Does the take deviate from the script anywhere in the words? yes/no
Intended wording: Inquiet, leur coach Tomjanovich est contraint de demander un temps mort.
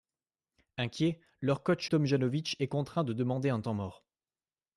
no